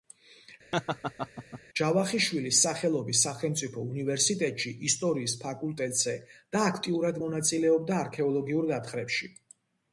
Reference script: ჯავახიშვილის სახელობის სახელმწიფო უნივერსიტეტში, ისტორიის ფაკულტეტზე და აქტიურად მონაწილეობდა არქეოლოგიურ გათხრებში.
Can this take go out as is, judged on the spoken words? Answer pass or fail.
pass